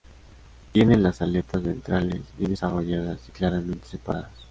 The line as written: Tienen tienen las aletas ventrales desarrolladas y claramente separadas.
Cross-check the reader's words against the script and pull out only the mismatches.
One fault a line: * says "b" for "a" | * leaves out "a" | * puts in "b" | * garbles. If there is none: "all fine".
* leaves out "tienen"
* puts in "bien"